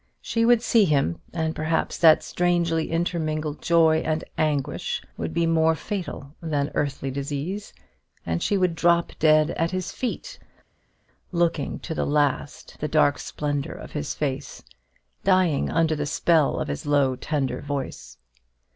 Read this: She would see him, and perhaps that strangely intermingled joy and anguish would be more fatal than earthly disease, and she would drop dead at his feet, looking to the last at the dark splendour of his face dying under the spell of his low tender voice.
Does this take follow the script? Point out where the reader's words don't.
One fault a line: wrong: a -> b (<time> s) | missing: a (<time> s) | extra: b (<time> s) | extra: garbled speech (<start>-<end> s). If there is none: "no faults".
missing: at (12.8 s)